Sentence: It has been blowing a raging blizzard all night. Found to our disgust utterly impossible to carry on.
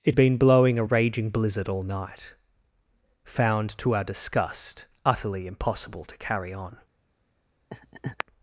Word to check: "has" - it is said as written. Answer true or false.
false